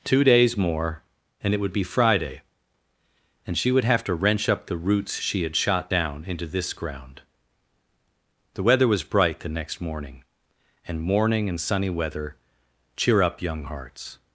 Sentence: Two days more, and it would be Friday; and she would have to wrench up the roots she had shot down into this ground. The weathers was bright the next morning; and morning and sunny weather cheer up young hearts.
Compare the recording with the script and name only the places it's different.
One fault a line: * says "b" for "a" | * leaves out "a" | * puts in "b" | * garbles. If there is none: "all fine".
* says "weather" for "weathers"